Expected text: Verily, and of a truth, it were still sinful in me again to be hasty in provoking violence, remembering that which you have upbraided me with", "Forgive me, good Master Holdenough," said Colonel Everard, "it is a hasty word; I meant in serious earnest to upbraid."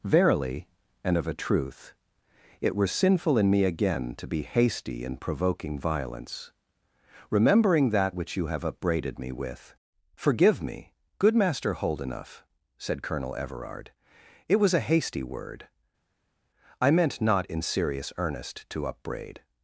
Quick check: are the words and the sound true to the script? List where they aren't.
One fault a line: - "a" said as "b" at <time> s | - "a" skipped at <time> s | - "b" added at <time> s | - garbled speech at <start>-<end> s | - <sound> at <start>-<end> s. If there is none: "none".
- "still" skipped at 2.9 s
- "is" said as "was" at 14.6 s
- "not" added at 17.2 s